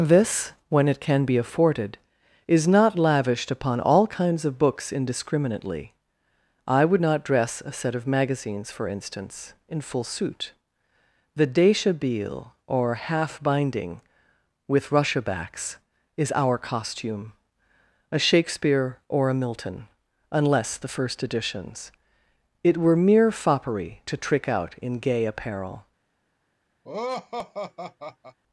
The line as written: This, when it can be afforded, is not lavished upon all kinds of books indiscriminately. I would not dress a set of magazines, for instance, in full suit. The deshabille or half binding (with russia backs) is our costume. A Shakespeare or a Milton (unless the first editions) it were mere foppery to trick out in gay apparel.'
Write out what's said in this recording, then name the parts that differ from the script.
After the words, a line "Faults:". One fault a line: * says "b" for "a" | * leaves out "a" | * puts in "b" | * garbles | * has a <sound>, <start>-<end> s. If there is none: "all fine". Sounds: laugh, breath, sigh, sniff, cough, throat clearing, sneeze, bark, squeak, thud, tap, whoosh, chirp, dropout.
This, when it can be afforded, is not lavished upon all kinds of books indiscriminately. I would not dress a set of magazines, for instance, in full suit. The deshabille or half binding (with russia backs) is our costume. A Shakespeare or a Milton (unless the first editions) it were mere foppery to trick out in gay apparel.'
Faults:
* has a laugh, 26.8-28.4 s